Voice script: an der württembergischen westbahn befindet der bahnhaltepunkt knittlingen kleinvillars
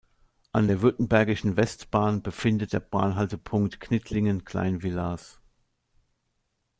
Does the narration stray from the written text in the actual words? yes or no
no